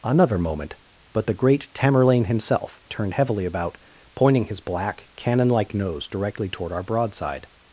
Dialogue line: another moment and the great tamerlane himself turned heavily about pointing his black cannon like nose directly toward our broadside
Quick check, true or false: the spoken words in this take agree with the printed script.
false